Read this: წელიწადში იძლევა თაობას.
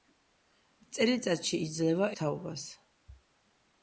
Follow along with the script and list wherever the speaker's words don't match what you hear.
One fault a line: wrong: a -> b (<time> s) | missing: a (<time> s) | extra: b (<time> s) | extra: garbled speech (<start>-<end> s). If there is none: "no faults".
no faults